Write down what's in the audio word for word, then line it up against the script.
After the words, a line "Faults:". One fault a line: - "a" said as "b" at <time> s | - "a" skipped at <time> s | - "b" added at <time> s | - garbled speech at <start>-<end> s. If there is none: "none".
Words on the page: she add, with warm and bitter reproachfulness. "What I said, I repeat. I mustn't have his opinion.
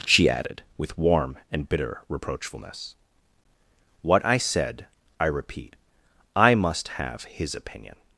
she added, with warm and bitter reproachfulness. "What I said, I repeat. I must have his opinion.
Faults:
- "add" said as "added" at 0.3 s
- "mustn't" said as "must" at 6.5 s